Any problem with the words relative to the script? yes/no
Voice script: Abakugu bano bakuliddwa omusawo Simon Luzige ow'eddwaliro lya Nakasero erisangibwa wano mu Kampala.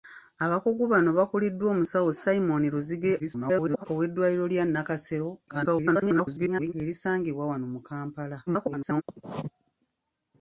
yes